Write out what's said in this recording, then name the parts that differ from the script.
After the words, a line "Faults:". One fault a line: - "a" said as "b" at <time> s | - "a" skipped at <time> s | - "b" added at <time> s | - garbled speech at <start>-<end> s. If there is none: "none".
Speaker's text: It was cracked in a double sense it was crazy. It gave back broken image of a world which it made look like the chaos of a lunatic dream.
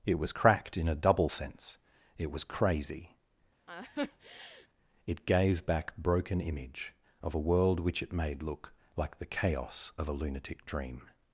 It was cracked in a double sense it was crazy. It gave back broken image of a world which it made look like the chaos of a lunatic dream.
Faults:
none